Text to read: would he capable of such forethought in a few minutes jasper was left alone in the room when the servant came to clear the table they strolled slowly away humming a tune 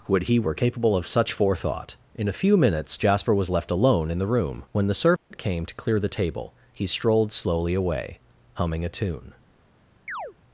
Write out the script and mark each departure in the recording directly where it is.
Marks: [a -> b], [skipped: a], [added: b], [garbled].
would he [added: were] capable of such forethought in a few minutes jasper was left alone in the room when the servant came to clear the table [they -> he] strolled slowly away humming a tune